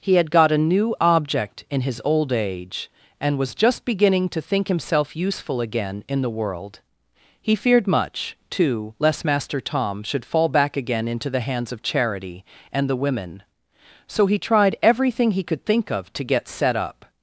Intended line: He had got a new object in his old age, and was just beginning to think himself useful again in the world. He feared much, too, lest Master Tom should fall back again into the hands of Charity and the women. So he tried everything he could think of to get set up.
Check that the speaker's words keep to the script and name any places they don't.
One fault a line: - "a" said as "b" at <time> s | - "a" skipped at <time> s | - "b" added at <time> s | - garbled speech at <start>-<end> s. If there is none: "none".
none